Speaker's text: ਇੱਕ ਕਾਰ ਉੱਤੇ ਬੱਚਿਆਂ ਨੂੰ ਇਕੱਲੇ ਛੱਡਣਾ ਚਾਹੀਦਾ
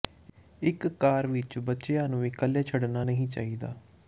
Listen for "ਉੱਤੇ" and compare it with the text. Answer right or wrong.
wrong